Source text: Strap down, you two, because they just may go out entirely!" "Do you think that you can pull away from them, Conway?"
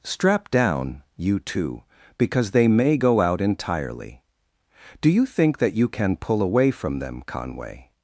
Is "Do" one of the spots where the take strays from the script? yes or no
no